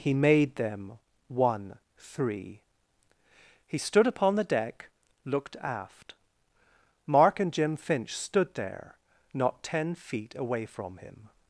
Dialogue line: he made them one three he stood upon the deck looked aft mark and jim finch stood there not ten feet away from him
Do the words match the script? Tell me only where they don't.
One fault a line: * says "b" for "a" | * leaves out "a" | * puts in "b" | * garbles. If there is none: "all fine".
all fine